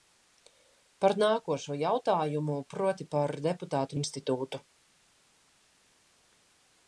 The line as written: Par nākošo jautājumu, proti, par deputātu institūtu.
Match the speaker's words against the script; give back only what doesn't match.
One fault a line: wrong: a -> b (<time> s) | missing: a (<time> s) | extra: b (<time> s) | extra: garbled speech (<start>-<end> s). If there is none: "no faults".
no faults